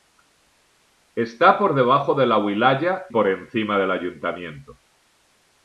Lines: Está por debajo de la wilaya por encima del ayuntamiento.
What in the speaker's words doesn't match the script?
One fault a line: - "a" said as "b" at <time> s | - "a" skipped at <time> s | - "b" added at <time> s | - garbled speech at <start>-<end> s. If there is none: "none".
none